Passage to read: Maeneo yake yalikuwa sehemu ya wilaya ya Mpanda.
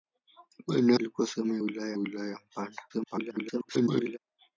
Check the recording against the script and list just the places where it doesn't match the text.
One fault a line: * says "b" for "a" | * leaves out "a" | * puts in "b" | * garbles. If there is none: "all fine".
* leaves out "yake"
* puts in "wilaya"
* garbles